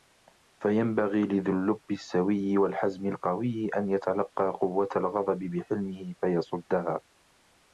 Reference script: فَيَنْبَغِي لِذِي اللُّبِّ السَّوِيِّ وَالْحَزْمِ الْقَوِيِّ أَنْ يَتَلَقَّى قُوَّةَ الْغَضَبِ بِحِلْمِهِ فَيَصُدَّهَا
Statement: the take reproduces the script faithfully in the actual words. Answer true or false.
true